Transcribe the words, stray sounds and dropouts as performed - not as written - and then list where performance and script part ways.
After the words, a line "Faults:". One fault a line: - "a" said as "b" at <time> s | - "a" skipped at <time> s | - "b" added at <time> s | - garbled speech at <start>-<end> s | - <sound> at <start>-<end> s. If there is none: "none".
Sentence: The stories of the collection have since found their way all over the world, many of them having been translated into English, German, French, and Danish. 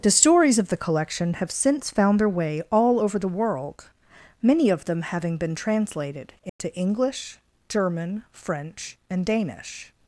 The stories of the collection have since found their way all over the world, many of them having been translated into English, German, French, and Danish.
Faults:
- dropout at 6.5-6.6 s